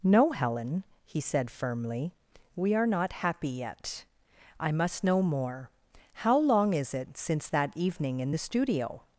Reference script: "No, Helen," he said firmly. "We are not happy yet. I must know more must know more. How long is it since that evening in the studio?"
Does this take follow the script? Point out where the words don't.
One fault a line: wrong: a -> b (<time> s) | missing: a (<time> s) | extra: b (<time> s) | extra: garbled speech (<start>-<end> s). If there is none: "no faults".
missing: must know more (5.7 s)